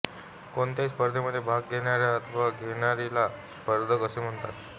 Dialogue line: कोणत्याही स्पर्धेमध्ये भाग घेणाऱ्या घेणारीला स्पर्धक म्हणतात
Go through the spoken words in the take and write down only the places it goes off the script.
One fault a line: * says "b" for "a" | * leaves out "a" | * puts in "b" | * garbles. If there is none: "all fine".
* puts in "अथवा"
* puts in "असे"